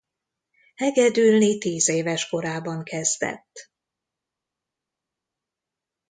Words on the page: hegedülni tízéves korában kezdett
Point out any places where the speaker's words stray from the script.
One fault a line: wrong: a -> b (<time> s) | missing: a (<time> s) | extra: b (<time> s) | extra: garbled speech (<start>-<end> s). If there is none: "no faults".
no faults